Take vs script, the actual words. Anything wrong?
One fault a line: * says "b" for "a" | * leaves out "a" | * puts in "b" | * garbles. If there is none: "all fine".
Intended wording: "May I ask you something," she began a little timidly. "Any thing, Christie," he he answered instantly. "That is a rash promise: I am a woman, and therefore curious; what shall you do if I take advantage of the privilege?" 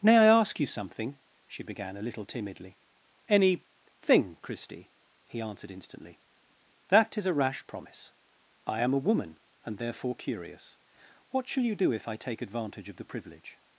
* leaves out "he"